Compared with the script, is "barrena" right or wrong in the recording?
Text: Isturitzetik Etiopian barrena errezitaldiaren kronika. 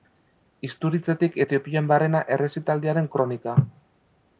right